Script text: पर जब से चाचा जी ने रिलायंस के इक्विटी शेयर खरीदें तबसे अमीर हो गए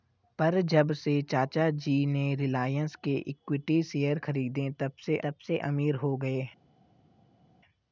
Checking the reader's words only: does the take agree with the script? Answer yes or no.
no